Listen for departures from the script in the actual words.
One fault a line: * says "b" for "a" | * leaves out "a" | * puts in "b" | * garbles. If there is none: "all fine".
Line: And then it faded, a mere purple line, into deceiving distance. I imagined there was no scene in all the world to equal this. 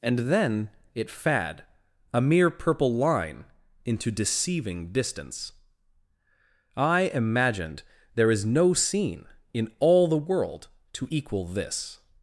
* says "fad" for "faded"
* says "is" for "was"